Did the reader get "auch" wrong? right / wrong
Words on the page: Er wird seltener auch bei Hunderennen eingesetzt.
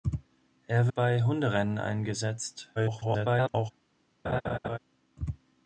wrong